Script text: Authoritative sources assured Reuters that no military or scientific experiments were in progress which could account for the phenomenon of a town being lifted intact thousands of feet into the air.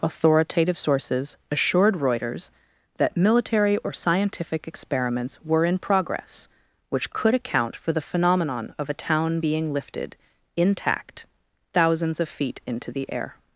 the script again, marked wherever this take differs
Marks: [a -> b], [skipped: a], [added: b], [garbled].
Authoritative sources assured Reuters that [skipped: no] military or scientific experiments were in progress which could account for the phenomenon of a town being lifted intact thousands of feet into the air.